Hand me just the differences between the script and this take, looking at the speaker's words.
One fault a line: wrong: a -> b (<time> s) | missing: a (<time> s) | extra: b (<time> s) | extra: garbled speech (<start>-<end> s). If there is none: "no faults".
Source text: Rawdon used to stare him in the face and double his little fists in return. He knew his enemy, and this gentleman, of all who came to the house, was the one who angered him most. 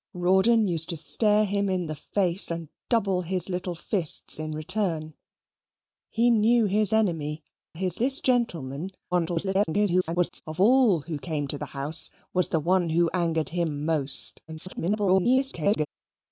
wrong: and -> his (7.7 s)
extra: garbled speech (9.1-10.4 s)
extra: garbled speech (14.5-15.9 s)